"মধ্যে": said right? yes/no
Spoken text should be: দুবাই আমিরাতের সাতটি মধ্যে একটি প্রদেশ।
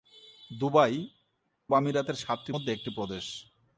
yes